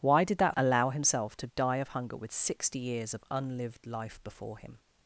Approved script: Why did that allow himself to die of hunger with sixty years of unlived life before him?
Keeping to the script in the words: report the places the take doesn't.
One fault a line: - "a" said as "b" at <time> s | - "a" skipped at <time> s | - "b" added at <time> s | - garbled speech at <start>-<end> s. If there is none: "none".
none